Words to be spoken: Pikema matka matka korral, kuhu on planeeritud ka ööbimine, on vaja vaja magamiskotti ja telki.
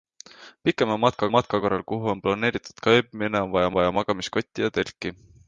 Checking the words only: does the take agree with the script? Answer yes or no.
yes